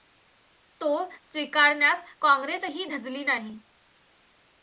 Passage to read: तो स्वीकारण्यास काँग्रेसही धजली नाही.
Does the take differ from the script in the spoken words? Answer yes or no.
no